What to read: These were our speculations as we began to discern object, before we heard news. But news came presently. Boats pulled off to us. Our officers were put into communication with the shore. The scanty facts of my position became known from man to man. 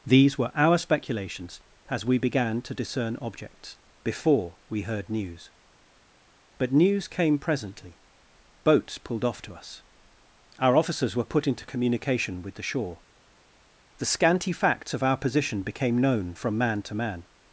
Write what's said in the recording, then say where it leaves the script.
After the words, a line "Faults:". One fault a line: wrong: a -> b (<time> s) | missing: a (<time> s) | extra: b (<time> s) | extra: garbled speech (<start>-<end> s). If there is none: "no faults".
These were our speculations as we began to discern objects, before we heard news. But news came presently. Boats pulled off to us. Our officers were put into communication with the shore. The scanty facts of our position became known from man to man.
Faults:
wrong: object -> objects (3.2 s)
wrong: my -> our (15.0 s)